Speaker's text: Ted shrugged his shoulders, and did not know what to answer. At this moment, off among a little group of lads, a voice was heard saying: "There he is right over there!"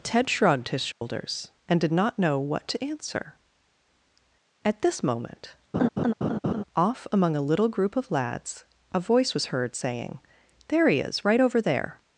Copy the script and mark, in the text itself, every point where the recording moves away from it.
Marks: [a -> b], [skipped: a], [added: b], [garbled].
Ted shrugged his shoulders, and did not know what to answer. At this moment, off among a little group of lads, a voice was heard saying: "There he is right over there!"